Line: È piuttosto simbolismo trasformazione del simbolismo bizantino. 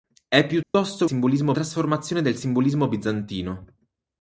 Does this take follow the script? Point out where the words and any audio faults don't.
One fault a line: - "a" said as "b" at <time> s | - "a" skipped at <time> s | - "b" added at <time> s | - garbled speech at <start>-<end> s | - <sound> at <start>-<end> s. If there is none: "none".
- dropout at 0.6-0.7 s